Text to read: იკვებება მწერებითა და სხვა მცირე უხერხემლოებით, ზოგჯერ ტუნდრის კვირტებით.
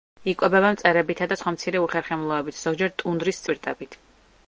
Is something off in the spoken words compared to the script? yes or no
no